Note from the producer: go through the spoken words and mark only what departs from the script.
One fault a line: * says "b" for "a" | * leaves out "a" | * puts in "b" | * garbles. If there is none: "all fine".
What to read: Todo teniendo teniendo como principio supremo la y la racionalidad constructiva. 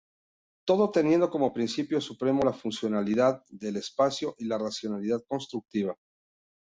* leaves out "teniendo"
* puts in "funcionalidad del espacio"